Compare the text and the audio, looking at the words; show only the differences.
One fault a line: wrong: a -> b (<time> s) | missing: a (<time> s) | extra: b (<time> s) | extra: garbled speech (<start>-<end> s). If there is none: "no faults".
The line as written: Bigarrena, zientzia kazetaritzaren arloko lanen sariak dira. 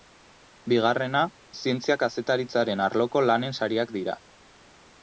no faults